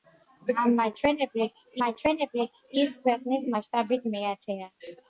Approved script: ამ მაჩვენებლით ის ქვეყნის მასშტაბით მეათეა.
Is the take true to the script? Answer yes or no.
no